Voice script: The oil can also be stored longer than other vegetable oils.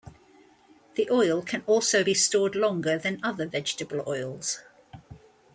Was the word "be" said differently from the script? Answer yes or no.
no